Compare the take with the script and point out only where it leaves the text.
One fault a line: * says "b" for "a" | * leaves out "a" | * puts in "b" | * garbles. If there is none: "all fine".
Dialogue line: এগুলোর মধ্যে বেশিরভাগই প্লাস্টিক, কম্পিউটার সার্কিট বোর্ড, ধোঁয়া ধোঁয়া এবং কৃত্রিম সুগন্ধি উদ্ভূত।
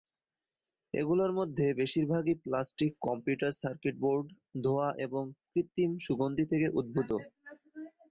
* leaves out "ধোঁয়া"
* puts in "থেকে"